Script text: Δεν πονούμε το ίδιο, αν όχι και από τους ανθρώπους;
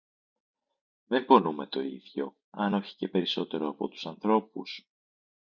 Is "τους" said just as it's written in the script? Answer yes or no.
yes